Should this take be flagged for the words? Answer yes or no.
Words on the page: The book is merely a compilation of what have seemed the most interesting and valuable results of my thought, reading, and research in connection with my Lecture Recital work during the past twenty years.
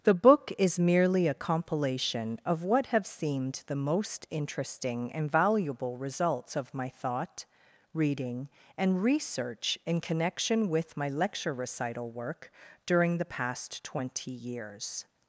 no